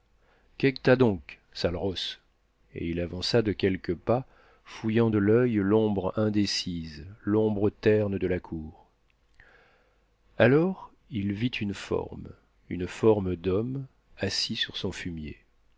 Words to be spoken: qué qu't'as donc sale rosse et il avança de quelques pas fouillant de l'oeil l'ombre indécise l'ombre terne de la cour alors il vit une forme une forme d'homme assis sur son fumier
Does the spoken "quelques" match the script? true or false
true